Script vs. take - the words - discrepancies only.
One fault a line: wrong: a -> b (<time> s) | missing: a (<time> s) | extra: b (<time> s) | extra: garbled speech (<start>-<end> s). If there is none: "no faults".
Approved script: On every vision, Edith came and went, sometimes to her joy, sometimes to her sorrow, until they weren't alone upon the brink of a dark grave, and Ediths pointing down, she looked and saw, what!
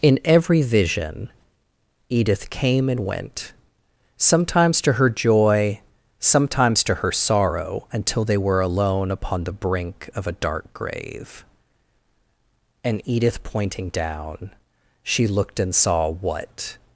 wrong: On -> In (0.0 s)
wrong: weren't -> were (8.4 s)
wrong: Ediths -> Edith (13.1 s)